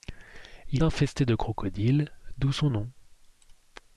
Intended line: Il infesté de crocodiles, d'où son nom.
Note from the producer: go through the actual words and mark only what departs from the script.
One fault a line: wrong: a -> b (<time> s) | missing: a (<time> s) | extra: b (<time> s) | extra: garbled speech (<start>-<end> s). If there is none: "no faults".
no faults